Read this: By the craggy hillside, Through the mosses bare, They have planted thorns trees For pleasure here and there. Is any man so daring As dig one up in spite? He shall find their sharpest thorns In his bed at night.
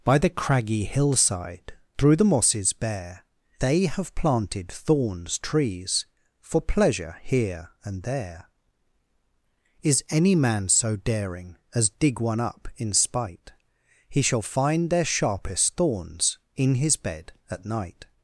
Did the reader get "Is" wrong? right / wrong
right